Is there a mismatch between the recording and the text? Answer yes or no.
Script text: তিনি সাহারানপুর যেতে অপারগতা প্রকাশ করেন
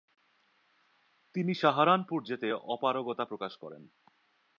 no